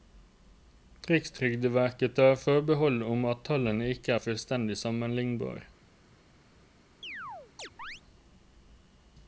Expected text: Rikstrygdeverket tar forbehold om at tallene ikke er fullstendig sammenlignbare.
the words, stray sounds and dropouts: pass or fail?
fail